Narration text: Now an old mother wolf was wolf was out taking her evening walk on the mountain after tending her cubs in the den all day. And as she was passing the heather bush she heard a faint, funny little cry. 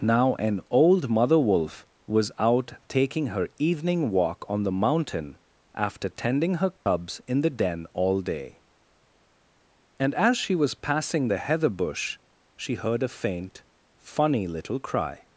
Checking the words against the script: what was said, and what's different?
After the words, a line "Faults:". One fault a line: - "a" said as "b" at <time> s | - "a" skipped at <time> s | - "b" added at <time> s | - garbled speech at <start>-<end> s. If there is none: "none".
Now an old mother wolf was out taking her evening walk on the mountain after tending her cubs in the den all day. And as she was passing the heather bush she heard a faint, funny little cry.
Faults:
- "wolf was" skipped at 2.3 s